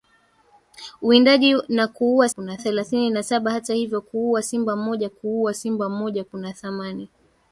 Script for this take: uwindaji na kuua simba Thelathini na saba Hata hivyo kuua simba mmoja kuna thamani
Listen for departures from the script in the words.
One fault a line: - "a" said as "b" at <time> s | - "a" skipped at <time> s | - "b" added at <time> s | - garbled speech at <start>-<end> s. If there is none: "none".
- "simba" said as "kuna" at 2.3 s
- "kuua simba mmoja" added at 5.1 s